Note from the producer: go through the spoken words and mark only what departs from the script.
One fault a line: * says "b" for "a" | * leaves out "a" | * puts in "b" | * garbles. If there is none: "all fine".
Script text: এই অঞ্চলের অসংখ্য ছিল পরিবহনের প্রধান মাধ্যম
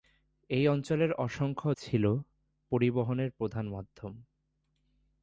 all fine